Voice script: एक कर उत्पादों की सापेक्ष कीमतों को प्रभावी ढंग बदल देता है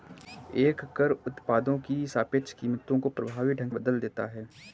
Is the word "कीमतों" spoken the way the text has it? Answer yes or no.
yes